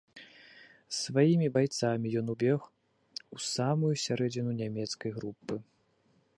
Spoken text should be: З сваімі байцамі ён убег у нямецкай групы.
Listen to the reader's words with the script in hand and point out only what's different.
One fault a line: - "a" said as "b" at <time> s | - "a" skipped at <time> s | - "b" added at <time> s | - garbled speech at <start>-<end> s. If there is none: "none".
- "самую сярэдзіну" added at 3.5 s